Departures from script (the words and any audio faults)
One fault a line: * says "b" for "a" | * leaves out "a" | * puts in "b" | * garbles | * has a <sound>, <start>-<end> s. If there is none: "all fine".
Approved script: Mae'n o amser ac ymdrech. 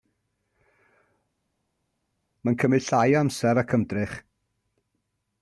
* puts in "cymryd llai"